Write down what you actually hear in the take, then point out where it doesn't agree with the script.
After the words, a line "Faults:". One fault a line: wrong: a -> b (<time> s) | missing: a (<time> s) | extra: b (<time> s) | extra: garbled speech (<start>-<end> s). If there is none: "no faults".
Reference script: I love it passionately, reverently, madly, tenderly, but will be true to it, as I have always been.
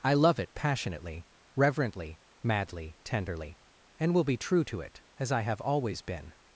I love it passionately, reverently, madly, tenderly, and will be true to it, as I have always been.
Faults:
wrong: but -> and (4.0 s)